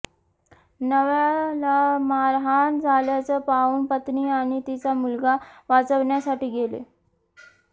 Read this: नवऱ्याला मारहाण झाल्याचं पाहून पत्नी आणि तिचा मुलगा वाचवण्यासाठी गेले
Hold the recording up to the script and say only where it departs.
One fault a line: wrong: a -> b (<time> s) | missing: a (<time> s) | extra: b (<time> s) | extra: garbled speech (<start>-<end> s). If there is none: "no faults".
no faults